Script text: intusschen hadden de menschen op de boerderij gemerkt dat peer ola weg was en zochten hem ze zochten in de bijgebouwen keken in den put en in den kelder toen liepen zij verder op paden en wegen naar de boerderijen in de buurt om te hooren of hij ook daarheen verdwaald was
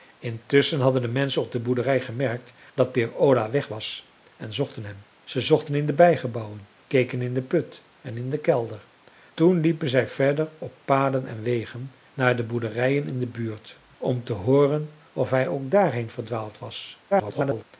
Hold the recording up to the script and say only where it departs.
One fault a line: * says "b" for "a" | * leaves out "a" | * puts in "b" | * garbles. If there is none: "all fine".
* garbles